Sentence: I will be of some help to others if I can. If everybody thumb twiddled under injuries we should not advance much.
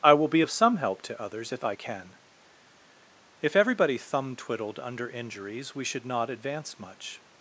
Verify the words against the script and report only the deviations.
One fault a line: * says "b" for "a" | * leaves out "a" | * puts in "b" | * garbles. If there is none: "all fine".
all fine